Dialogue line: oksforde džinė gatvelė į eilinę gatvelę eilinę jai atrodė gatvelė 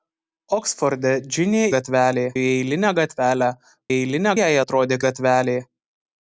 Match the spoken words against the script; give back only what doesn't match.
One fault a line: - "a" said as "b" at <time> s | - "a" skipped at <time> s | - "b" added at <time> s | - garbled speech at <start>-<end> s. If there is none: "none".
none